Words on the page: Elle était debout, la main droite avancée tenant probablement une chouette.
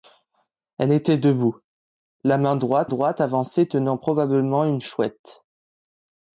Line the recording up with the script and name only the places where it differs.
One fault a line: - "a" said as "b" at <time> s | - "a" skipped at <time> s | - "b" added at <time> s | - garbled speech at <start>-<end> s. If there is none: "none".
- "droite" added at 2.8 s